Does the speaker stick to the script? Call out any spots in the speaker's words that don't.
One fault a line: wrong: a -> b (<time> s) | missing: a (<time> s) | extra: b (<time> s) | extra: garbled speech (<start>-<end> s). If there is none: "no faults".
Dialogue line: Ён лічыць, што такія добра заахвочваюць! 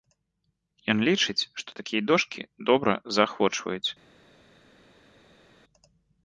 extra: дошкі (2.1 s)